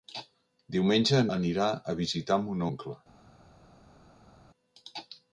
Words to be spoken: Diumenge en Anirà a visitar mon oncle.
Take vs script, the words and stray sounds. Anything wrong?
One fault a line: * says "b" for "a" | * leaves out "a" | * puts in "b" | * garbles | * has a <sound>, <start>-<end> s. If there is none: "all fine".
all fine